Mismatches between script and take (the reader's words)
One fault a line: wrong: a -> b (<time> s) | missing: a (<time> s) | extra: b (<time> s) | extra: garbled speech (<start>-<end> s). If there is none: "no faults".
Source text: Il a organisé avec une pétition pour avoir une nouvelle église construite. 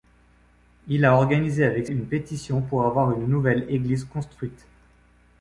no faults